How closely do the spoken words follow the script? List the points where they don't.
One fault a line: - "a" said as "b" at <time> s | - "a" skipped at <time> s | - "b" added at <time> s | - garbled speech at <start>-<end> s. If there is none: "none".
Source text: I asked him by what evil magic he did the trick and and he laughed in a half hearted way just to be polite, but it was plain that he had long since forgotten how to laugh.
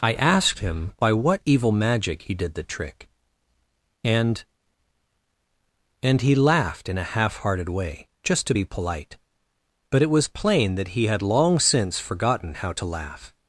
none